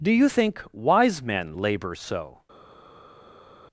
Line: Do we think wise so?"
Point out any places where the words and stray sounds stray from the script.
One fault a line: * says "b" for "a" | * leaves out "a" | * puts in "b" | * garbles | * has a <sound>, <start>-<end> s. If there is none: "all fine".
* says "you" for "we"
* puts in "men labor"